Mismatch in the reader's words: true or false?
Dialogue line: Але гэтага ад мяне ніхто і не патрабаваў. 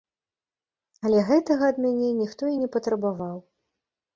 false